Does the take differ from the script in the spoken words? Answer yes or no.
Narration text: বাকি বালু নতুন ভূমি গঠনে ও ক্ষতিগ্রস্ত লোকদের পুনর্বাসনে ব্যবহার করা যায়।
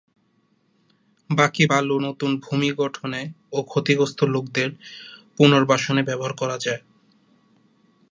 no